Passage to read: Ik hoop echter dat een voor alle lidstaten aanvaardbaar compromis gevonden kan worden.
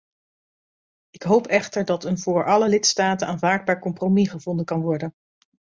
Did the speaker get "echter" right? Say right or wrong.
right